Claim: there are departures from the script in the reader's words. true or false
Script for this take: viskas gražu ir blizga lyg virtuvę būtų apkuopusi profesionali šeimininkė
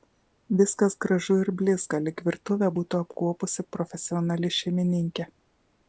false